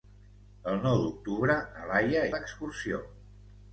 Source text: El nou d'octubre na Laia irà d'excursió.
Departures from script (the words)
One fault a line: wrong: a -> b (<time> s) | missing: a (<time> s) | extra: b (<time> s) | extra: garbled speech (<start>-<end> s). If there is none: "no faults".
missing: irà (2.2 s)